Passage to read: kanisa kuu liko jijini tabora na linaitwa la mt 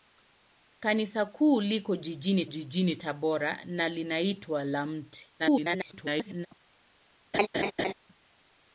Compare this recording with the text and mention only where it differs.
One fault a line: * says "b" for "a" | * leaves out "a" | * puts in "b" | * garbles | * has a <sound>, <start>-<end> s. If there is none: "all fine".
* puts in "jijini"
* garbles
* has a laugh, 7.3-7.9 s